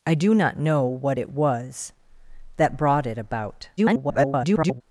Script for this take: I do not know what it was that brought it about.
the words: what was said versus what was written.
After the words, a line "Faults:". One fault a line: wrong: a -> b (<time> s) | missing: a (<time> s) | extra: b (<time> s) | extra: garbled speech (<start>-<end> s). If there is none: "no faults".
I do not know what it was that brought it about. [garbled]
Faults:
extra: garbled speech (3.8-4.8 s)